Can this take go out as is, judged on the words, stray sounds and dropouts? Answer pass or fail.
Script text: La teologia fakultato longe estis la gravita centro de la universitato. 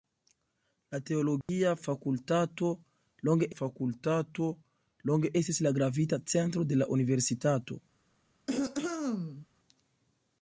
fail